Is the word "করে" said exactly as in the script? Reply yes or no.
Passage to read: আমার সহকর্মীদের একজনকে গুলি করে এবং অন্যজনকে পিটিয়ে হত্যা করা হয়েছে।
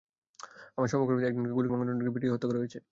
no